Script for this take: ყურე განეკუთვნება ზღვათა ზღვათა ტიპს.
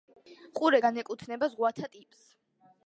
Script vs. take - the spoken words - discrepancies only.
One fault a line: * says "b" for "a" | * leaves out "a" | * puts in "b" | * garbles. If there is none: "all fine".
* leaves out "ზღვათა"